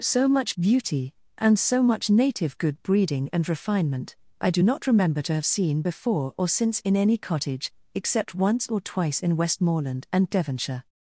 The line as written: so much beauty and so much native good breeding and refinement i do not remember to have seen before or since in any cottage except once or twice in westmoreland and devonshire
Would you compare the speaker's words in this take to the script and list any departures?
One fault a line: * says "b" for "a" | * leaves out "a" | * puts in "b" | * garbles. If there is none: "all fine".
all fine